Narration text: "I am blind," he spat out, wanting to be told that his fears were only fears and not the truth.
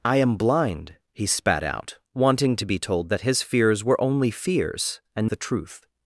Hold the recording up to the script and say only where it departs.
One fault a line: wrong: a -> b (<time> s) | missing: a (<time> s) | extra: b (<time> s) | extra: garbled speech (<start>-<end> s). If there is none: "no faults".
missing: not (5.3 s)